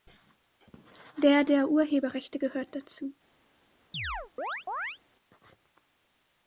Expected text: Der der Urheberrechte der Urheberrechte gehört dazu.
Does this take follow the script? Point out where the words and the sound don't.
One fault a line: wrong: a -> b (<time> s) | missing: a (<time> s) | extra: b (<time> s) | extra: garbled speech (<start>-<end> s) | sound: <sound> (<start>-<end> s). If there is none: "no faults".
missing: der Urheberrechte (2.4 s)
sound: chirp (3.9-5.0 s)